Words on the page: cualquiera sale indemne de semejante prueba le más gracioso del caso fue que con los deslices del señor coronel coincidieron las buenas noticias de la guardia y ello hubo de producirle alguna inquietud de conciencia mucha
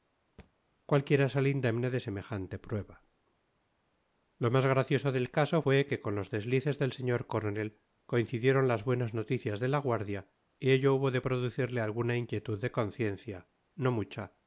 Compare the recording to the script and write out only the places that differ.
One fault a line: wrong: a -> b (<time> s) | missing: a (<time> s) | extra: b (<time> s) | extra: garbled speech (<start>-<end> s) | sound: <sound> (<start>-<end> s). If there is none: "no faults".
sound: thud (0.4-0.5 s)
wrong: le -> lo (4.4 s)
extra: no (13.8 s)